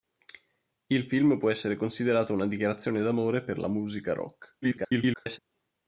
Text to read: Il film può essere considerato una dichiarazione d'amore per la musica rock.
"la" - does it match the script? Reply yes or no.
yes